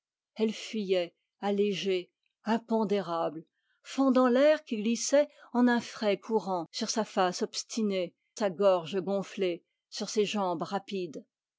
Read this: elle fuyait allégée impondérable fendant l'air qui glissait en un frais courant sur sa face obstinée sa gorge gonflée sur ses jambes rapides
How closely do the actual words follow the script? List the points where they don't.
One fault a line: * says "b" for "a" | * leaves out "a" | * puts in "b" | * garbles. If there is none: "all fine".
all fine